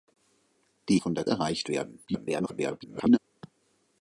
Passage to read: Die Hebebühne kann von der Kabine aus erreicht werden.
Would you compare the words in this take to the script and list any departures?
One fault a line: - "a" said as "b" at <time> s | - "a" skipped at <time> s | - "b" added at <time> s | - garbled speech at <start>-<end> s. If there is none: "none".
- "Hebebühne kann" skipped at 1.0 s
- "Kabine aus" skipped at 1.3 s
- garbled speech at 2.1-3.2 s